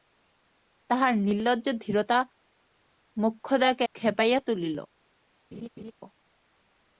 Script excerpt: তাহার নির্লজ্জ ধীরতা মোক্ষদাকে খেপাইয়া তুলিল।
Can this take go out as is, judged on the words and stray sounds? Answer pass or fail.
fail